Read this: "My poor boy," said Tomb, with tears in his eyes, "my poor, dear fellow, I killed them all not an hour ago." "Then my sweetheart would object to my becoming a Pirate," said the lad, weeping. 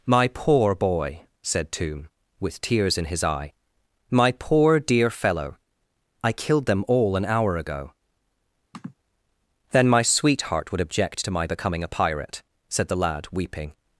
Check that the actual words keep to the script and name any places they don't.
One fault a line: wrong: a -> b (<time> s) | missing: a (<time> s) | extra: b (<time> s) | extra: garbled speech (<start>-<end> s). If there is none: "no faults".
wrong: eyes -> eye (3.2 s)
missing: not (7.2 s)